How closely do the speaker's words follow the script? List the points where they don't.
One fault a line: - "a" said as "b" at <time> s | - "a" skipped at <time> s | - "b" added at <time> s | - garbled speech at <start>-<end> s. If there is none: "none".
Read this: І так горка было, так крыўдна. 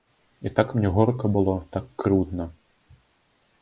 - "мне" added at 0.8 s